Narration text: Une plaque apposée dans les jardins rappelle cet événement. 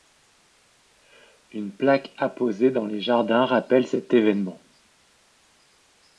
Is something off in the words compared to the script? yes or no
no